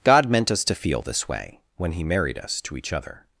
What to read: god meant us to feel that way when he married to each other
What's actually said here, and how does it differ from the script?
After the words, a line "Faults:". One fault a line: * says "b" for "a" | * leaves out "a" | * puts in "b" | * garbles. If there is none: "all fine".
god meant us to feel this way when he married us to each other
Faults:
* says "this" for "that"
* puts in "us"